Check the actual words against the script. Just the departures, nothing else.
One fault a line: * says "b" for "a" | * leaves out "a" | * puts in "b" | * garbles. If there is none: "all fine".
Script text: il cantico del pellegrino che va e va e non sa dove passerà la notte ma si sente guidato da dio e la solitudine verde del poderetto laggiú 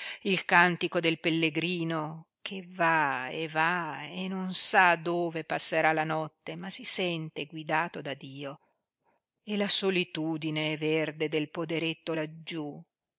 all fine